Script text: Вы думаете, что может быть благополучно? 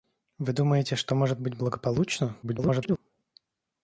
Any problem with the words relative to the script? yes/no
yes